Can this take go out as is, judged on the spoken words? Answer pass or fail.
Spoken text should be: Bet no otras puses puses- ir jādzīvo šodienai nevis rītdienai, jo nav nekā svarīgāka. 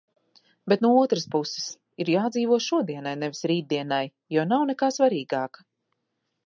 fail